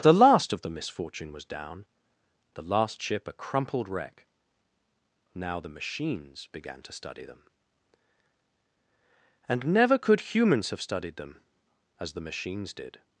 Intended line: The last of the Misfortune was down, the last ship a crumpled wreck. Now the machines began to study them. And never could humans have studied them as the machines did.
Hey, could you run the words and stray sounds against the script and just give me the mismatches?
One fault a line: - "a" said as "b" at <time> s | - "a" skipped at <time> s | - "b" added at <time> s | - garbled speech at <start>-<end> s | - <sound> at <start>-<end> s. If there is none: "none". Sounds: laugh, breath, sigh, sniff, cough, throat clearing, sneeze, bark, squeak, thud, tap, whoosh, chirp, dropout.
none